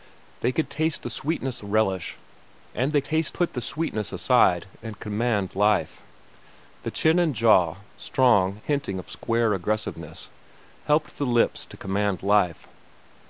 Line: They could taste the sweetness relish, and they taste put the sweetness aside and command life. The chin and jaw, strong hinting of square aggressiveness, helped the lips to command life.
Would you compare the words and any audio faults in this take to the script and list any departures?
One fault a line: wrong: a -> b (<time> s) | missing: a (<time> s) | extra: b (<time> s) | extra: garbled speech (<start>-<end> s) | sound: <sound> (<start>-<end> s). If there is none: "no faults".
no faults